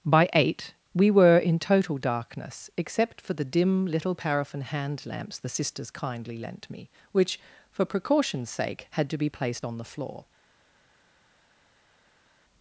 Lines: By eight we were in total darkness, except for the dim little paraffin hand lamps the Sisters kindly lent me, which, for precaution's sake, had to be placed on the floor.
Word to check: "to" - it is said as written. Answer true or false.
true